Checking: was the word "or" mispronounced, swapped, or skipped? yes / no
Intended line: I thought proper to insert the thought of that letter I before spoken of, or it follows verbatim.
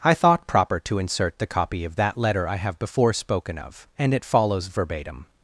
yes